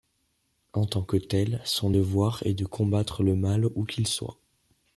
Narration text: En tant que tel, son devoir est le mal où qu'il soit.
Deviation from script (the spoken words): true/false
true